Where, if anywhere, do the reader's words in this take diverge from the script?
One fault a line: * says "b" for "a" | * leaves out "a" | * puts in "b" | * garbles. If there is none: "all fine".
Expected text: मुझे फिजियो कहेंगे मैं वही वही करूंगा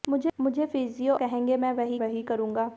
all fine